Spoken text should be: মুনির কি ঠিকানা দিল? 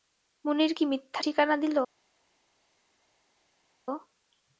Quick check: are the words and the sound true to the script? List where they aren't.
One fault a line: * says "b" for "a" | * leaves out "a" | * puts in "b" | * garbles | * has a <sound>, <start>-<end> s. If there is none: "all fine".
* puts in "মিথ্যা"